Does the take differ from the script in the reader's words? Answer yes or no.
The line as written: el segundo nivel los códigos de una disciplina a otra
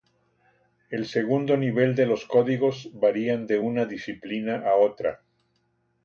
yes